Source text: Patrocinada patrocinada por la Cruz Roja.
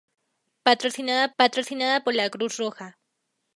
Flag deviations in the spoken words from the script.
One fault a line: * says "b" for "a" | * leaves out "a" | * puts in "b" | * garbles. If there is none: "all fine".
all fine